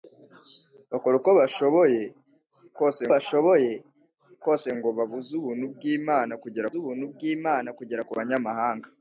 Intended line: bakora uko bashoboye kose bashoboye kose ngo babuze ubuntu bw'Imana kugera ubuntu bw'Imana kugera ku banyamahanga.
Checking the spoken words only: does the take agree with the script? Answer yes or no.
yes